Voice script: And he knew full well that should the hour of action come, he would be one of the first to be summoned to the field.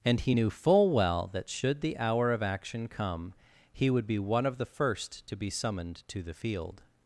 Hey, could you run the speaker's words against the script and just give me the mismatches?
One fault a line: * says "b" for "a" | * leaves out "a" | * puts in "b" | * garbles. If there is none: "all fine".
all fine